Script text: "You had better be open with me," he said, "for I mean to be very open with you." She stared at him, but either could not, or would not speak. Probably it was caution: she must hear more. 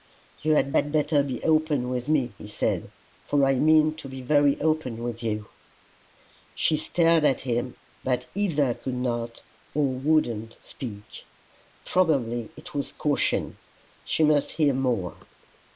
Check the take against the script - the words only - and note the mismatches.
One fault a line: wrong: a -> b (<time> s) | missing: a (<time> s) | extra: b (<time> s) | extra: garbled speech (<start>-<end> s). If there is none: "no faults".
extra: had (0.7 s)